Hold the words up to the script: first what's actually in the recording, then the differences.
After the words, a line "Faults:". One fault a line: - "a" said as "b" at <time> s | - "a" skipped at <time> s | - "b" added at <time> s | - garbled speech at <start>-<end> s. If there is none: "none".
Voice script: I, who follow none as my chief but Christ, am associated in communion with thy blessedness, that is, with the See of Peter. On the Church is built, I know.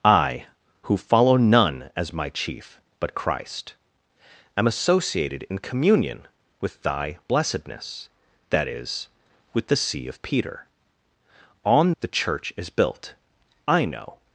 I, who follow none as my chief but Christ, am associated in communion with thy blessedness, that is, with the See of Peter. On the Church is built, I know.
Faults:
none